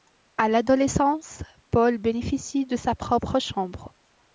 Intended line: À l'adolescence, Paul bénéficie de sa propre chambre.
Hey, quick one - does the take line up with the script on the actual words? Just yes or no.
yes